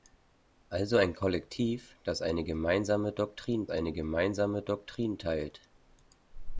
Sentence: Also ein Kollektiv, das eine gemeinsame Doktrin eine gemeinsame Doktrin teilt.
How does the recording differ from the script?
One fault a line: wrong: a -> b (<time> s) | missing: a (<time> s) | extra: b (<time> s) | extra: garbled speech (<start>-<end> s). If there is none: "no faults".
no faults